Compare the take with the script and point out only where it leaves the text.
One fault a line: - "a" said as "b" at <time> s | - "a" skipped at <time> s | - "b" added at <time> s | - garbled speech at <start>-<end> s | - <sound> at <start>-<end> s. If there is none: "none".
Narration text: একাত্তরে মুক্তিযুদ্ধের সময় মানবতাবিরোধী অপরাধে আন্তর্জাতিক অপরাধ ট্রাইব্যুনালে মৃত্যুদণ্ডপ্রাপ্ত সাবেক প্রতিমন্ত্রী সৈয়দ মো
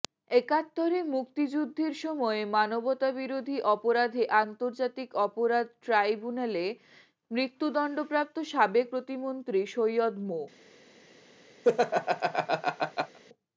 - laugh at 11.6-13.2 s